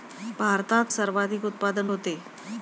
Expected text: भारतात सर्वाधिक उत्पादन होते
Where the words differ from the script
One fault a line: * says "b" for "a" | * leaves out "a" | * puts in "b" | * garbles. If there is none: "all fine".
all fine